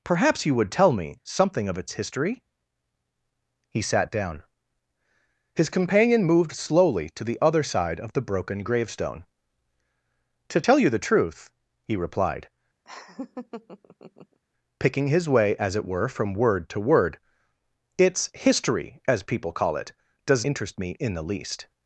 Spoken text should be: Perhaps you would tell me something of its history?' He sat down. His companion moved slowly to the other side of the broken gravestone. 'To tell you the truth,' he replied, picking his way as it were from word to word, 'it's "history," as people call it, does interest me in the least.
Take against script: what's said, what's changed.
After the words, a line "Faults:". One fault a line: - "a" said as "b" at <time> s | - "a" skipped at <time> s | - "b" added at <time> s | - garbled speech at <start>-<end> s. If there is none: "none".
Perhaps you would tell me something of its history?' He sat down. His companion moved slowly to the other side of the broken gravestone. 'To tell you the truth,' he replied, picking his way as it were from word to word, 'it's "history," as people call it, does interest me in the least.
Faults:
none